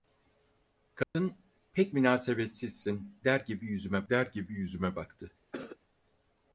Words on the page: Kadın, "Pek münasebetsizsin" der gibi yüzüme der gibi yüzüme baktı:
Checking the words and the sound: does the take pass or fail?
fail